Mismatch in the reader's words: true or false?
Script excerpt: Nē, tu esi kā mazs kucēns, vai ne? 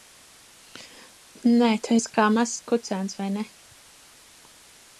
false